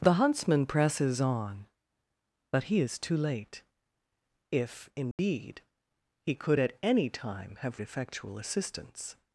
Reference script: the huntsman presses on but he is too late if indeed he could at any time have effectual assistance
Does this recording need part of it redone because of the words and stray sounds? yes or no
yes